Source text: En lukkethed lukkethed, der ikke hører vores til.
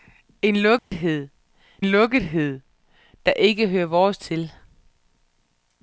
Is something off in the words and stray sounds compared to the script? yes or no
yes